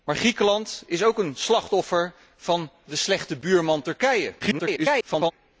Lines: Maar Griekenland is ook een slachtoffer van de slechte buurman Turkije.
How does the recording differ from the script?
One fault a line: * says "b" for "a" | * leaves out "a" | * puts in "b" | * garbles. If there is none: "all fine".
* garbles